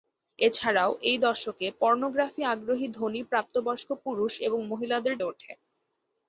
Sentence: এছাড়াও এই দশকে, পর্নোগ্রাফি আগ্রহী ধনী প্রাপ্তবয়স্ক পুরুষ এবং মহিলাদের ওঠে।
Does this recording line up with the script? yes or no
yes